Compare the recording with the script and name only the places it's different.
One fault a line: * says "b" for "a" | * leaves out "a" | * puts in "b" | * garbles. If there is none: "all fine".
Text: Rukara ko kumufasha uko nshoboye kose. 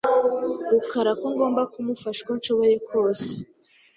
* puts in "ngomba"